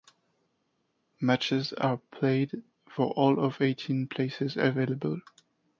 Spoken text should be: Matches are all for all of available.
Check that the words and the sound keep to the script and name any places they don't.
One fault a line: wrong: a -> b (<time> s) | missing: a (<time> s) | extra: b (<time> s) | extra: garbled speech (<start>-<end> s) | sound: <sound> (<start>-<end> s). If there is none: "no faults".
wrong: all -> played (2.1 s)
extra: eighteen places (3.6 s)